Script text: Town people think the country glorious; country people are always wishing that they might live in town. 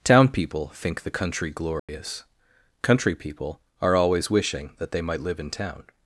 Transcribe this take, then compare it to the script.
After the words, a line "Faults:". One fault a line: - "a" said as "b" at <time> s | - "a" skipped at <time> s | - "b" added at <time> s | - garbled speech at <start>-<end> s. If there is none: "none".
Town people think the country glorious; country people are always wishing that they might live in town.
Faults:
none